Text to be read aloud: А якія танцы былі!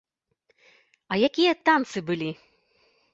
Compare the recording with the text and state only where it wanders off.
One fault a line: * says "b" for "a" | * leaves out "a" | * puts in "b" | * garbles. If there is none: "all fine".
all fine